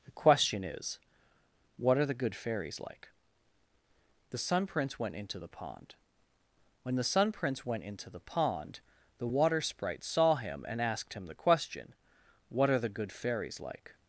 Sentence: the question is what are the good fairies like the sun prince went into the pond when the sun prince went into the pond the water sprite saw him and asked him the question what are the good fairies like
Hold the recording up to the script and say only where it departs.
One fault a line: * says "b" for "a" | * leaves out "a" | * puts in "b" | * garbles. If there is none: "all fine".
all fine